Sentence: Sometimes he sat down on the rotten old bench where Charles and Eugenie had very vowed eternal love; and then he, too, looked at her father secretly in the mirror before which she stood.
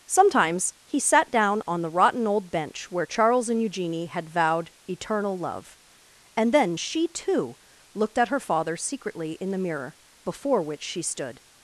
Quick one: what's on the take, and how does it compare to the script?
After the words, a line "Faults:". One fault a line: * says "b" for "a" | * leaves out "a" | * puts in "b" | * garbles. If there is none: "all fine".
Sometimes he sat down on the rotten old bench where Charles and Eugenie had vowed eternal love; and then she, too, looked at her father secretly in the mirror before which she stood.
Faults:
* leaves out "very"
* says "she" for "he"